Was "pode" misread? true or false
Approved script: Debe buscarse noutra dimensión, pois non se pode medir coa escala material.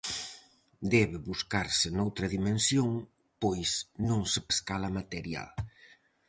true